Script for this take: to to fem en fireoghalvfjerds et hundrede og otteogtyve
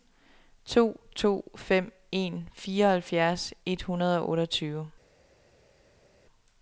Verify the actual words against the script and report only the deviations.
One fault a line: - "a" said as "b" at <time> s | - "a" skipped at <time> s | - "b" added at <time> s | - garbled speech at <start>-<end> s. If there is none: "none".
none